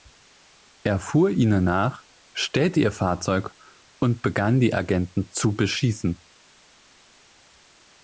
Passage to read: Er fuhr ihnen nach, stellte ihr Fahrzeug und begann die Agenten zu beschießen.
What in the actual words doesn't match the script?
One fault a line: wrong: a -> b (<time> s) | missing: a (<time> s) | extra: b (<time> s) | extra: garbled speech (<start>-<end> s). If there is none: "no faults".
no faults